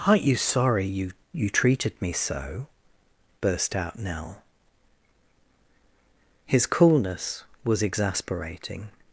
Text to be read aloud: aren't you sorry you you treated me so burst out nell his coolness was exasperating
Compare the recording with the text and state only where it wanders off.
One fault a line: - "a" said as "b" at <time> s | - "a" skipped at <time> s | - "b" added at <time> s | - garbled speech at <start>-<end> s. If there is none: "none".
none